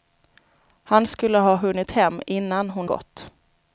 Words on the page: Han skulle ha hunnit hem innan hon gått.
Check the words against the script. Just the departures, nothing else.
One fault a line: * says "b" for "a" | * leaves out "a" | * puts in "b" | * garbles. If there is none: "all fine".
all fine